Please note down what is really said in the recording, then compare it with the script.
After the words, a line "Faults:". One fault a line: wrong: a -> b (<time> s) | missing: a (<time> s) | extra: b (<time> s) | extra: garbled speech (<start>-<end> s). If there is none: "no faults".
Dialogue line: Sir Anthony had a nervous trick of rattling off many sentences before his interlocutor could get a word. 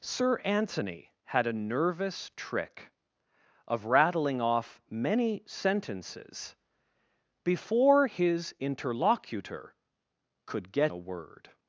Sir Anthony had a nervous trick of rattling off many sentences before his interlocutor could get a word.
Faults:
no faults